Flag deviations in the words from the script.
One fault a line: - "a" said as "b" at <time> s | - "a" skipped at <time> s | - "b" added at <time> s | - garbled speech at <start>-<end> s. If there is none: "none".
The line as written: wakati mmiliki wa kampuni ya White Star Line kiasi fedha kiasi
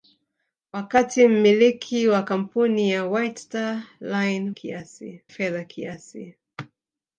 none